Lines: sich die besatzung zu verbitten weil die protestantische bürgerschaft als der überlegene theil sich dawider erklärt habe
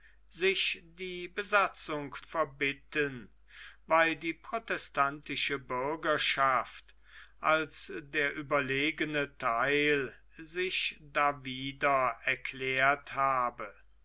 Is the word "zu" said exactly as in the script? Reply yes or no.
no